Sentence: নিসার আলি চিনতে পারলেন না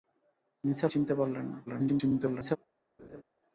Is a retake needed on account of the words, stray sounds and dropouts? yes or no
yes